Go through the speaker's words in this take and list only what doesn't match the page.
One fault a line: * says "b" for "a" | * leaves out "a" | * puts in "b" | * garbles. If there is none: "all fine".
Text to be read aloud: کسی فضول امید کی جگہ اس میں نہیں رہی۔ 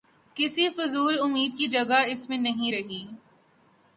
all fine